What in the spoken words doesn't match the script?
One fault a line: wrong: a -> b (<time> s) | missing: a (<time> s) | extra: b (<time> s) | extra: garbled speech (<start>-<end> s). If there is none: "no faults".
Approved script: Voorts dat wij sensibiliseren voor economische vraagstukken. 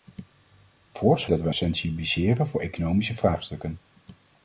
no faults